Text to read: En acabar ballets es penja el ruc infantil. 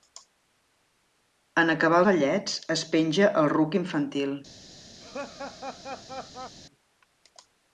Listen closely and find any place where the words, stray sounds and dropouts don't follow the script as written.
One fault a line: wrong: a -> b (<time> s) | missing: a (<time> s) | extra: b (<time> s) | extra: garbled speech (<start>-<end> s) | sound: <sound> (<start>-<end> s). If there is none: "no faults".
sound: laugh (5.0-6.5 s)